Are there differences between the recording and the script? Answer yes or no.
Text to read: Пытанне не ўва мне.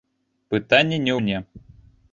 yes